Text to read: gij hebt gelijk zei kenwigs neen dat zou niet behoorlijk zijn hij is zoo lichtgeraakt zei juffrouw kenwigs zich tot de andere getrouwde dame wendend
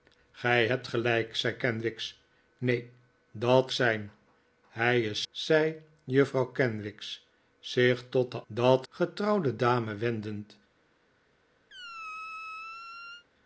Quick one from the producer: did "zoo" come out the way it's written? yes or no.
no